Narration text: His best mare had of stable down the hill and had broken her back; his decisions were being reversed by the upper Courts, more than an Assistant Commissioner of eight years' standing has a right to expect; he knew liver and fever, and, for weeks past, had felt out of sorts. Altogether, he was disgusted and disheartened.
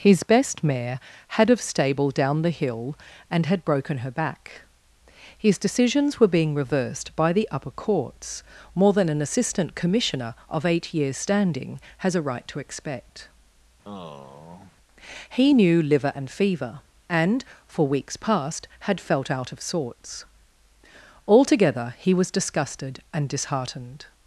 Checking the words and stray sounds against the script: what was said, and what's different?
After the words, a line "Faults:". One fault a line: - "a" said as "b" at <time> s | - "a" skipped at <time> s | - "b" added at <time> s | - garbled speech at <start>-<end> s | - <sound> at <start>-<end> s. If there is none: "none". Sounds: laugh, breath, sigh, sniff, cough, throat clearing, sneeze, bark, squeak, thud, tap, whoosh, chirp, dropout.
His best mare had of stable down the hill and had broken her back; his decisions were being reversed by the upper Courts, more than an Assistant Commissioner of eight years' standing has a right to expect; he knew liver and fever, and, for weeks past, had felt out of sorts. Altogether, he was disgusted and disheartened.
Faults:
- sigh at 13.8-14.7 s